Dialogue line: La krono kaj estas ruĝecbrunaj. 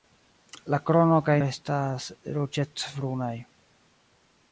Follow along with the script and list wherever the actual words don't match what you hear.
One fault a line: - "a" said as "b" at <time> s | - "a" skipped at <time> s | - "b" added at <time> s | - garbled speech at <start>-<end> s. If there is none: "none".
none